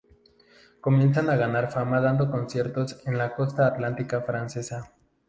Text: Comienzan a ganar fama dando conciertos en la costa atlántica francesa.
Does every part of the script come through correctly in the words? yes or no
yes